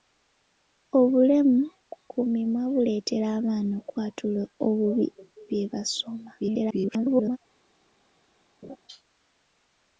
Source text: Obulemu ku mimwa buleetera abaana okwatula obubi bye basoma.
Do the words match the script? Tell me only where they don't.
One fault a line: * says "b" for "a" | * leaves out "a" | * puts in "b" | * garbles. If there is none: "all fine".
* garbles